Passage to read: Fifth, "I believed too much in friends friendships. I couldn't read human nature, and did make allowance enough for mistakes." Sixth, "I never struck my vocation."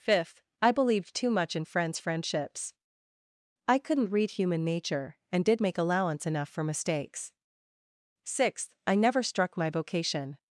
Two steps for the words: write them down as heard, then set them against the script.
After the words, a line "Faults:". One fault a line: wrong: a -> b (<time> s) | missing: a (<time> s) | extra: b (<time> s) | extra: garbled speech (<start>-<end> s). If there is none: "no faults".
Fifth, "I believed too much in friends friendships. I couldn't read human nature, and did make allowance enough for mistakes." Sixth, "I never struck my vocation."
Faults:
no faults